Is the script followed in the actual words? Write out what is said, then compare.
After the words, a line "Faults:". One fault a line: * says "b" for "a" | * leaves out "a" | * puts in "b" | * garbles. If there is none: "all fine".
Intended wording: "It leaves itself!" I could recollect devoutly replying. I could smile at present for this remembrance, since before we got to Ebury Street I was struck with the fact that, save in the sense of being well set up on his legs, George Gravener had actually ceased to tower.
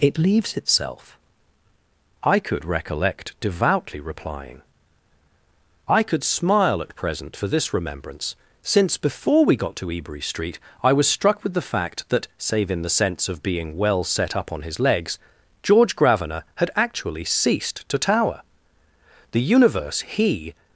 "It leaves itself!" I could recollect devoutly replying. I could smile at present for this remembrance, since before we got to Ebury Street I was struck with the fact that, save in the sense of being well set up on his legs, George Gravener had actually ceased to tower. The universe he
Faults:
* puts in "The universe he"